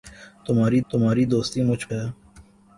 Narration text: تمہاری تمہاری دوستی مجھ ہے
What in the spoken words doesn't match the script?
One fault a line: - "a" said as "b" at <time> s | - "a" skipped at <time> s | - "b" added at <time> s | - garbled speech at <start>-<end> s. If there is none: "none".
none